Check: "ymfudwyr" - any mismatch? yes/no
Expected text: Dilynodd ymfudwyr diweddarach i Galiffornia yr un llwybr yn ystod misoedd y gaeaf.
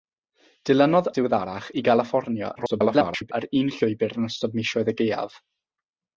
yes